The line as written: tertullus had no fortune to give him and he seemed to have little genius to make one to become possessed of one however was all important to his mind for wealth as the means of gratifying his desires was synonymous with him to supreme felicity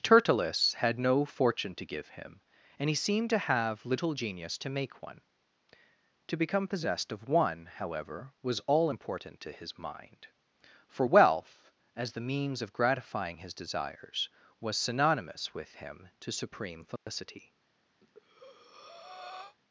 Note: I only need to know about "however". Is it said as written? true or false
true